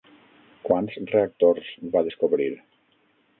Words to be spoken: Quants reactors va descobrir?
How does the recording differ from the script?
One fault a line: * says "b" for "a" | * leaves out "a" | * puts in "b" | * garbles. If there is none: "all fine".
all fine